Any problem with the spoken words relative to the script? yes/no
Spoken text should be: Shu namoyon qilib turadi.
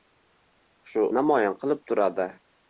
no